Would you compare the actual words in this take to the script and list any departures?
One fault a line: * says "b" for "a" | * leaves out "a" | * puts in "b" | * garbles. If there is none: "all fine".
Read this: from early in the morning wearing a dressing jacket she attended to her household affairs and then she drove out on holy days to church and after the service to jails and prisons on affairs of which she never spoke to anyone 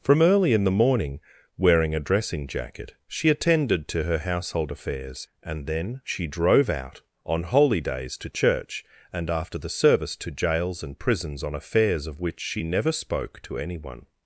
all fine